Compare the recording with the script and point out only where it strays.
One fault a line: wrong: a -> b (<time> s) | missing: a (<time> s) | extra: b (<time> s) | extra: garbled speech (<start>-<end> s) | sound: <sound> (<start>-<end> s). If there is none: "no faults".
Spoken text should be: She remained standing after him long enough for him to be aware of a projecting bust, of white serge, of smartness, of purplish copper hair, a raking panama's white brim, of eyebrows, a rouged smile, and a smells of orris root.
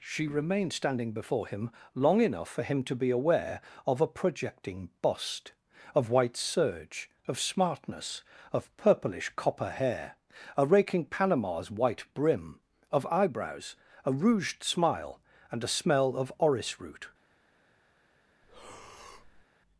wrong: after -> before (1.1 s)
wrong: smells -> smell (15.7 s)
sound: breath (18.4-19.5 s)